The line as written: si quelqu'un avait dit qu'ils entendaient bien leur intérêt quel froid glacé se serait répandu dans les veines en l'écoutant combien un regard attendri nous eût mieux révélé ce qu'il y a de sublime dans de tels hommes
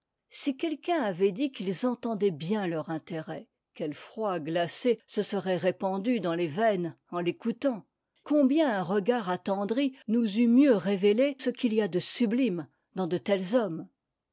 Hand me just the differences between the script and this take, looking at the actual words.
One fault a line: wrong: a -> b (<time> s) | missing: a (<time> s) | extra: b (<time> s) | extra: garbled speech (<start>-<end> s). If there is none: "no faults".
no faults